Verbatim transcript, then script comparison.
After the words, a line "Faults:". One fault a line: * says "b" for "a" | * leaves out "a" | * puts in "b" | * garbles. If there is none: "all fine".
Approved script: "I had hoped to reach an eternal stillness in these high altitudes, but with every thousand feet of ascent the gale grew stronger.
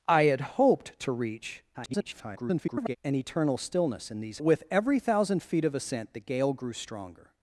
"I had hoped to reach [garbled] an eternal stillness in these with every thousand feet of ascent the gale grew stronger.
Faults:
* garbles
* leaves out "high altitudes but"